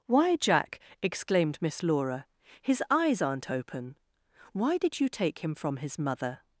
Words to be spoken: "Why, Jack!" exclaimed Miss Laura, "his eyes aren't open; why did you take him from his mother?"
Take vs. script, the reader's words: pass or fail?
pass